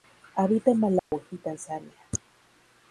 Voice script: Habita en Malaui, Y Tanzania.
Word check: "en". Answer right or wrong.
right